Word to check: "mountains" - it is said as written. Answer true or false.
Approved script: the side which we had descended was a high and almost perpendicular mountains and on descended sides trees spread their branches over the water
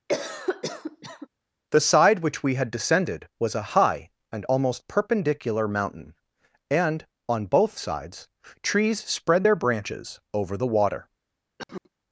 false